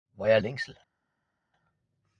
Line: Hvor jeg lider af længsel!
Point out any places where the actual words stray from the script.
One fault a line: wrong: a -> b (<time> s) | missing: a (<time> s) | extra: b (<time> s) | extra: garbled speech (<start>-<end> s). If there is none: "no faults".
missing: lider af (0.4 s)